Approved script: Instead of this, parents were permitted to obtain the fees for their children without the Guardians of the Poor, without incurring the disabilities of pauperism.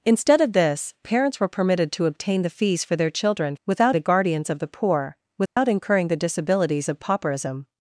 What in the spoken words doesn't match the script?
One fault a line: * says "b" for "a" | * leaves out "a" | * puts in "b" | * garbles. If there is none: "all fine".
all fine